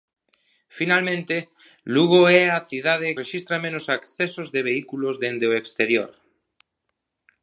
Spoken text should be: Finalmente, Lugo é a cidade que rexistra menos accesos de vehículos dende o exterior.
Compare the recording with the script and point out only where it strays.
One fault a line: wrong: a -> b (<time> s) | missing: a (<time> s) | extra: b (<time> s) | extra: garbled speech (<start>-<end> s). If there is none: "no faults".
missing: que (3.1 s)